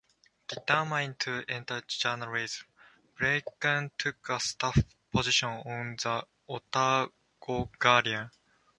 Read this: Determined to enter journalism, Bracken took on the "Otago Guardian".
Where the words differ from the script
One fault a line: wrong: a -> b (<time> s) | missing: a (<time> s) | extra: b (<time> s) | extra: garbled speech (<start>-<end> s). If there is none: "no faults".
extra: a staff position (4.3 s)